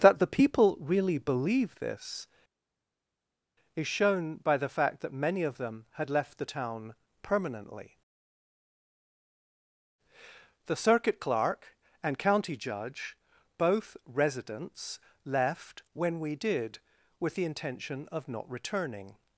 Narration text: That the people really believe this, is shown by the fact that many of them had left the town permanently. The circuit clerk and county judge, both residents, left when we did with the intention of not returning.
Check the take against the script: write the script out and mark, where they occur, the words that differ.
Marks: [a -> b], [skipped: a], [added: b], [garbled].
That the people really believe this, is shown by the fact that many of them had left the town permanently. The circuit clerk and county judge, both residents, left when we did with the intention of not returning.